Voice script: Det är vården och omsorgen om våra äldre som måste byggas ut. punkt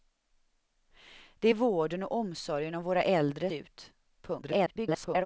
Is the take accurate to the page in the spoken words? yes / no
no